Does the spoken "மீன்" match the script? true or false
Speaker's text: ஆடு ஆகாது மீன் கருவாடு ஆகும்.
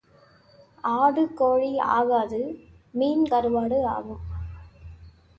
true